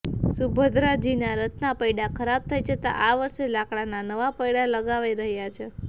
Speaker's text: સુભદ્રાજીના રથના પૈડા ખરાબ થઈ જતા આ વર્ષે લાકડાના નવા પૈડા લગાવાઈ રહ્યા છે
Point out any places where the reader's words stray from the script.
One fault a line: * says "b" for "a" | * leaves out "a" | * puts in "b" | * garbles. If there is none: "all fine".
all fine